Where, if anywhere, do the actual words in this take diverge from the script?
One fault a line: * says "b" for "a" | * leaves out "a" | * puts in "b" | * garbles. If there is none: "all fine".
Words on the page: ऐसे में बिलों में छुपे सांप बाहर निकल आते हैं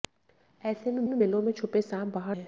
* puts in "में"
* leaves out "निकल आते"